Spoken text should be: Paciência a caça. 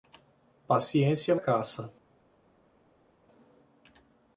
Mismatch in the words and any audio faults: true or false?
false